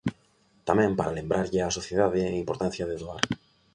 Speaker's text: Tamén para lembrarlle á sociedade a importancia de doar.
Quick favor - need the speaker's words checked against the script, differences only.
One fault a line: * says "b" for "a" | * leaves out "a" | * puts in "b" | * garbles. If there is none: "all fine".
all fine